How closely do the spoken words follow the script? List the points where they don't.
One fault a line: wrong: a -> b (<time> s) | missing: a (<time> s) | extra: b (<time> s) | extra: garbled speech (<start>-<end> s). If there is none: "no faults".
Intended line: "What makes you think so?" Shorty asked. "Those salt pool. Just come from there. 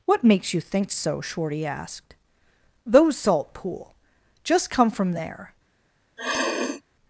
no faults